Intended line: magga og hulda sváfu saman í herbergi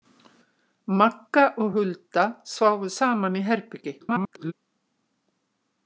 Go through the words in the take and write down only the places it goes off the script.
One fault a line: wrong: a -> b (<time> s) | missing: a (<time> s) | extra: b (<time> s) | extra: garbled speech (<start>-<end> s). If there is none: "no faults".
extra: garbled speech (4.0-4.5 s)